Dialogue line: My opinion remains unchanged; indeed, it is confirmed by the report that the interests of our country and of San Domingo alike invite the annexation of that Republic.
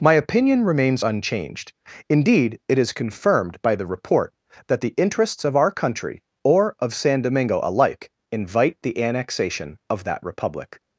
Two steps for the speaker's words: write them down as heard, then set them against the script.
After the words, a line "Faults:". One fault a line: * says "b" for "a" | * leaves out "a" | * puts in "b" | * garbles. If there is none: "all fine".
My opinion remains unchanged; indeed, it is confirmed by the report that the interests of our country or of San Domingo alike invite the annexation of that Republic.
Faults:
* says "or" for "and"